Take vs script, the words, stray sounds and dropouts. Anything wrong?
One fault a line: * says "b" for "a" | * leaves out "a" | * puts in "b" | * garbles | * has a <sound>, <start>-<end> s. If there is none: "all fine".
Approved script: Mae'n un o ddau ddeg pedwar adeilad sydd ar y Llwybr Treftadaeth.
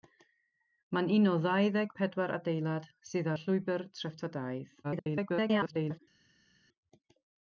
* leaves out "ar"
* garbles